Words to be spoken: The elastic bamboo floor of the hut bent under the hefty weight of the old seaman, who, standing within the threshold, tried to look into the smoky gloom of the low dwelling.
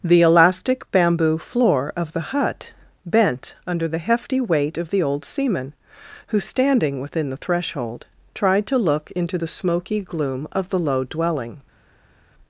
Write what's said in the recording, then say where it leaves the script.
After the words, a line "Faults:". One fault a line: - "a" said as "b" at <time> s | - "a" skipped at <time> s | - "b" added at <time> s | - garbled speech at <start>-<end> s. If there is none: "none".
The elastic bamboo floor of the hut bent under the hefty weight of the old seaman, who, standing within the threshold, tried to look into the smoky gloom of the low dwelling.
Faults:
none